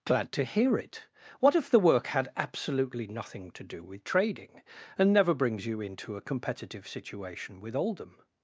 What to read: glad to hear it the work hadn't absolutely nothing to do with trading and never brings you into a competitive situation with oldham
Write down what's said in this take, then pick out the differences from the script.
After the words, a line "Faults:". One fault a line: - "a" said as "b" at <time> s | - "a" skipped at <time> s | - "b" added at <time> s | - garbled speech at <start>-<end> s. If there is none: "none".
glad to hear it what if the work had absolutely nothing to do with trading and never brings you into a competitive situation with oldham
Faults:
- "what if" added at 1.4 s
- "hadn't" said as "had" at 2.1 s